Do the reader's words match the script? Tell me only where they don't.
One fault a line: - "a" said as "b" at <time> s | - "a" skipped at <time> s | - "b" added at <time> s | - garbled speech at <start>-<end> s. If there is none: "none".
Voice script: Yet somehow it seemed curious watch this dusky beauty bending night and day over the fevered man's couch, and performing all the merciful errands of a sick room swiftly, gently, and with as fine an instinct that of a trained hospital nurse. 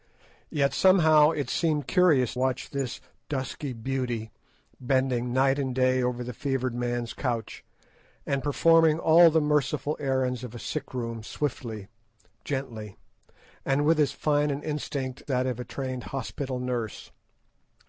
none